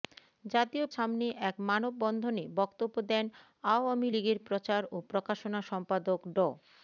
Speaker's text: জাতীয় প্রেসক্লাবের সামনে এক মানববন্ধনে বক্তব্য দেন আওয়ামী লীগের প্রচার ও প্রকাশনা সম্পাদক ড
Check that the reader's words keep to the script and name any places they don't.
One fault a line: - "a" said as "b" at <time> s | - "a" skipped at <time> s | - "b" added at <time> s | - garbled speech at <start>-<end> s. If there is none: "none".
- "প্রেসক্লাবের" skipped at 0.8 s